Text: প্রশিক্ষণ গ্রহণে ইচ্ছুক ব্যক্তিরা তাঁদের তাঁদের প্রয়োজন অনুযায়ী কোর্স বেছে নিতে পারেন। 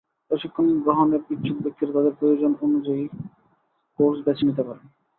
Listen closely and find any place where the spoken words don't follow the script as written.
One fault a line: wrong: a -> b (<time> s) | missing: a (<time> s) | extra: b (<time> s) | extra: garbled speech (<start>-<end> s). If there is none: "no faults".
missing: তাঁদের (2.1 s)